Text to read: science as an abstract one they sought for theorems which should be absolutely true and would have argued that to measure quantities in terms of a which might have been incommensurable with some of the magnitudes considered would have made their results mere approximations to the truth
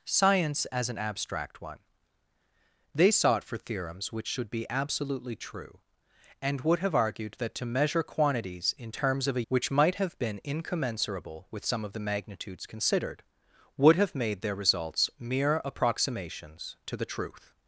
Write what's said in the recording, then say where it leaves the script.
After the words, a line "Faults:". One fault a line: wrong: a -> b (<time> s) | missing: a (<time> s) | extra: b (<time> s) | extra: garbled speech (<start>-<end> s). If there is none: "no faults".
science as an abstract one they sought for theorems which should be absolutely true and would have argued that to measure quantities in terms of a which might have been incommensurable with some of the magnitudes considered would have made their results mere approximations to the truth
Faults:
no faults